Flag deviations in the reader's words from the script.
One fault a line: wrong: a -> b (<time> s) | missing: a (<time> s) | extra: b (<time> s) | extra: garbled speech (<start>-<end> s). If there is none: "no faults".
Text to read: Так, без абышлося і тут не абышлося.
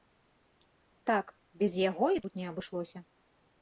wrong: абышлося -> яго (1.9 s)